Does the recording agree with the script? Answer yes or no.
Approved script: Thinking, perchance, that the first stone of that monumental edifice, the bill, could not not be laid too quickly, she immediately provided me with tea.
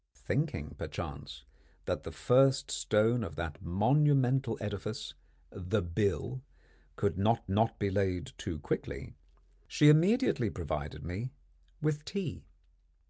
yes